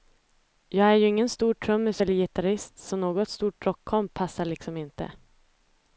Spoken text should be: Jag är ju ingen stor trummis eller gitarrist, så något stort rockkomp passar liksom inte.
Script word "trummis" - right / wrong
right